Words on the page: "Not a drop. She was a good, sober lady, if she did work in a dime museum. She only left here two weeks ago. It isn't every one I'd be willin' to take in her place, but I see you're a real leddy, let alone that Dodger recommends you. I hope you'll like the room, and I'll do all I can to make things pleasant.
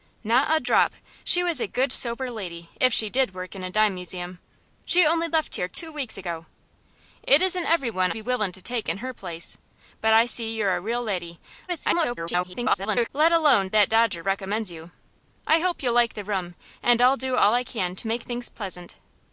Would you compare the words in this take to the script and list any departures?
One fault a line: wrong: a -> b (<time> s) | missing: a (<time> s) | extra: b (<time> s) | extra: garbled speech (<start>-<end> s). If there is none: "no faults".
missing: I'd (8.1 s)
extra: garbled speech (11.7-13.1 s)